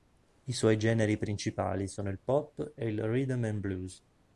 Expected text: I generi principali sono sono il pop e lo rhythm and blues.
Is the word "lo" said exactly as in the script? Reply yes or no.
no